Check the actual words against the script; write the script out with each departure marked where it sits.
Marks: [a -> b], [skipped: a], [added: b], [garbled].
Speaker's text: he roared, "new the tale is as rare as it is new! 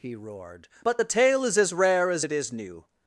he roared, ["new -> but] the tale is as rare as it is new!